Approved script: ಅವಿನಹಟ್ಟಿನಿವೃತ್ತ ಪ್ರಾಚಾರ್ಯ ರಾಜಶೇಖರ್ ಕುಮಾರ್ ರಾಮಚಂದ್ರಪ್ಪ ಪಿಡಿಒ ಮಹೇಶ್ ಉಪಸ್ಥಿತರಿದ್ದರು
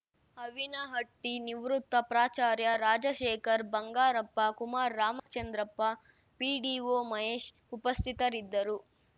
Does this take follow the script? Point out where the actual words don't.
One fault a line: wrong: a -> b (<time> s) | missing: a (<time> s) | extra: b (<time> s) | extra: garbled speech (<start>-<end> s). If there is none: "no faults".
extra: ಬಂಗಾರಪ್ಪ (3.7 s)